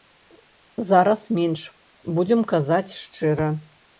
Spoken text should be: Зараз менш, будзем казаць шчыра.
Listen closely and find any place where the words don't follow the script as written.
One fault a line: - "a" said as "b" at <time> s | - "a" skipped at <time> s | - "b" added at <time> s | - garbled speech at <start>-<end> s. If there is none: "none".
none